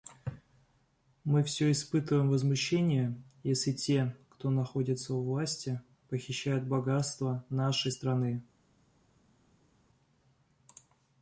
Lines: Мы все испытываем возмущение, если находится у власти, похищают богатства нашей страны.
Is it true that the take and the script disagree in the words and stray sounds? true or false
true